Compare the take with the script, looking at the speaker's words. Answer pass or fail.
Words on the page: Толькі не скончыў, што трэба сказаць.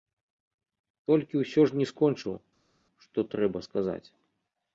fail